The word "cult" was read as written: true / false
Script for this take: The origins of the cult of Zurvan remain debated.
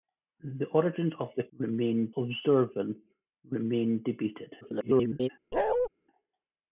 false